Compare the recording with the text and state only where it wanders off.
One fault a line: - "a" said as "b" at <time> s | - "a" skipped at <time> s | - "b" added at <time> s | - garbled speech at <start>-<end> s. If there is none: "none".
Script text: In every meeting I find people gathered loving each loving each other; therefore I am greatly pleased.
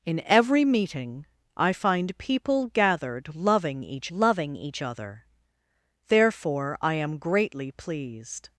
none